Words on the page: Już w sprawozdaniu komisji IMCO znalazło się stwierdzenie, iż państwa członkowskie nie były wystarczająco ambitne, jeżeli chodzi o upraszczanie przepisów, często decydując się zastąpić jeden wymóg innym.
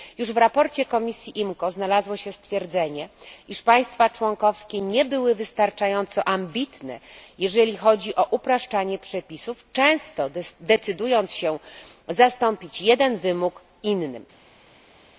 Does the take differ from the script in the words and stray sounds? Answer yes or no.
no